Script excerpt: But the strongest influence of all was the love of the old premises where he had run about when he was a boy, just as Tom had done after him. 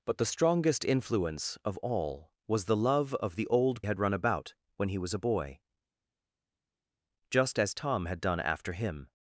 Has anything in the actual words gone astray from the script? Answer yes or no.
yes